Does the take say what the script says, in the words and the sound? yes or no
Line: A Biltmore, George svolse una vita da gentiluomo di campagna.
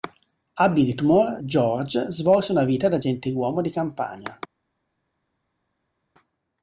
yes